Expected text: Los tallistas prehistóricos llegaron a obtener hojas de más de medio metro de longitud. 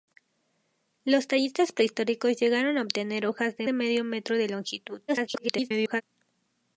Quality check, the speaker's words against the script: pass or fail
fail